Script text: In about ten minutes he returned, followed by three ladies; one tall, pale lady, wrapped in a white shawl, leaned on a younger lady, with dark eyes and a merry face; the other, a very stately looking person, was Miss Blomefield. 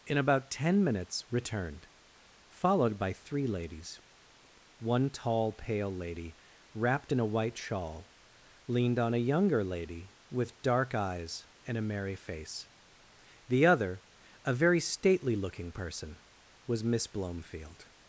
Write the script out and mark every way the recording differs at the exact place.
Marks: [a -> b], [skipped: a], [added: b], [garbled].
In about ten minutes [skipped: he] returned, followed by three ladies; one tall, pale lady, wrapped in a white shawl, leaned on a younger lady, with dark eyes and a merry face; the other, a very stately looking person, was Miss Blomefield.